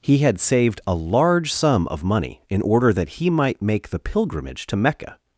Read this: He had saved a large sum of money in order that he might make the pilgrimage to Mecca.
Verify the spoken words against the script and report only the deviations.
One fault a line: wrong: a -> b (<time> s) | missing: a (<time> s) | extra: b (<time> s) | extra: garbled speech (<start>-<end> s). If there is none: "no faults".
no faults